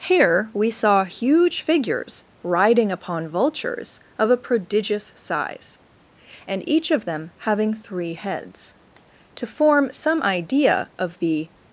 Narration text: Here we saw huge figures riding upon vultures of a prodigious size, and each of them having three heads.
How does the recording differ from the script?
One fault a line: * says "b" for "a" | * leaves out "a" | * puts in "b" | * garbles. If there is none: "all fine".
* puts in "To form some idea of the"